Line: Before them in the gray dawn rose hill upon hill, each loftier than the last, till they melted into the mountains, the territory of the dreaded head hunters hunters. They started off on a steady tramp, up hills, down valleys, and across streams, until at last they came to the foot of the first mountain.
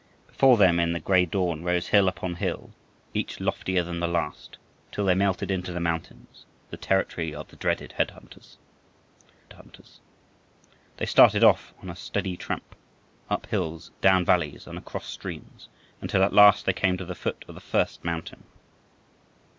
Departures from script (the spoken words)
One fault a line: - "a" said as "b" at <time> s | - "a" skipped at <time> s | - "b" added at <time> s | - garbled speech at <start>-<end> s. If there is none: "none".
none